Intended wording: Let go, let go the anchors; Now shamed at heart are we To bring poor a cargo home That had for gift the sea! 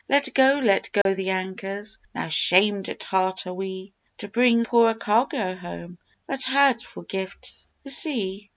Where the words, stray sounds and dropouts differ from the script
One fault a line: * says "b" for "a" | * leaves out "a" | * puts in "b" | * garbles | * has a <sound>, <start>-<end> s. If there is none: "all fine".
* has a dropout, 1.0-1.1 s